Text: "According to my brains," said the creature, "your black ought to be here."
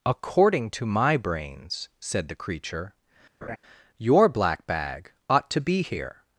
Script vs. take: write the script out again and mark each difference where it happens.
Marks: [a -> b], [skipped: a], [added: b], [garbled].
"According to my brains," said the creature, "your black [added: bag] ought to be here."